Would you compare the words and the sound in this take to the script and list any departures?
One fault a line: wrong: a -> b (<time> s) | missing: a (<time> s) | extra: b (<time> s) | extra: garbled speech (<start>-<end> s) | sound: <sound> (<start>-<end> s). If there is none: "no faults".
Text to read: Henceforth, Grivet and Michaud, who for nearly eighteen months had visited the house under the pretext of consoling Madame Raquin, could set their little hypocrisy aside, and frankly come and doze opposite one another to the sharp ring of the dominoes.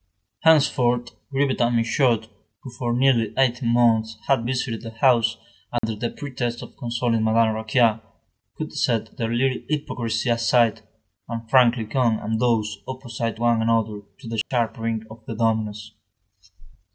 sound: dropout (5.8-5.8 s)
sound: dropout (14.4-14.5 s)